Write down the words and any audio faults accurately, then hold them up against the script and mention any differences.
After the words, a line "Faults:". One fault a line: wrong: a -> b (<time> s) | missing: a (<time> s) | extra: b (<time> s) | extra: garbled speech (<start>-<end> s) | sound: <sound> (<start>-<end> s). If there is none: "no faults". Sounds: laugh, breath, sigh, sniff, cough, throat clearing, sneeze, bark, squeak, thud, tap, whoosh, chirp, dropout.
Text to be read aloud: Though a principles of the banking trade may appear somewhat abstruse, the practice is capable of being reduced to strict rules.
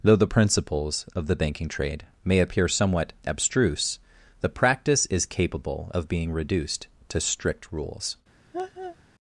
Though the principles of the banking trade may appear somewhat abstruse, the practice is capable of being reduced to strict rules.
Faults:
wrong: a -> the (0.1 s)
sound: laugh (8.5-9.0 s)